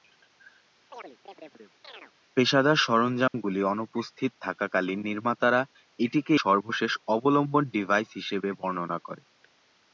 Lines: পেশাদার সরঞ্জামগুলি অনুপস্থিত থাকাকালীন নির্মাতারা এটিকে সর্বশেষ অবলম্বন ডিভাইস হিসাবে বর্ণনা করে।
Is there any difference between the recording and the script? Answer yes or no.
no